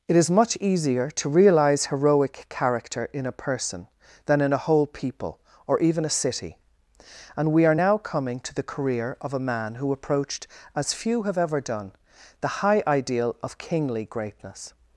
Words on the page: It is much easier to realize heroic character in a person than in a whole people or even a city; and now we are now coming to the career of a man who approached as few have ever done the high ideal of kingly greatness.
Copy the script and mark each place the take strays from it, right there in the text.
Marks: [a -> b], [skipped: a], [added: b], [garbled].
It is much easier to realize heroic character in a person than in a whole people or even a city; and [skipped: now] we are now coming to the career of a man who approached as few have ever done the high ideal of kingly greatness.